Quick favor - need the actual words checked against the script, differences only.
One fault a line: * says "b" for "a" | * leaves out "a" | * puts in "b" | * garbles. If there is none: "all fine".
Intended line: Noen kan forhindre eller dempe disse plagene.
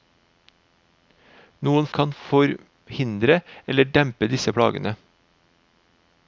all fine